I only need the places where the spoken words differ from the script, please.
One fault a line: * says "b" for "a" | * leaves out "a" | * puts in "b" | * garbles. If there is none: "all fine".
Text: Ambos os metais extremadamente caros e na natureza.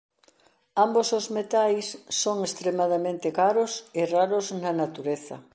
* puts in "son"
* puts in "raros"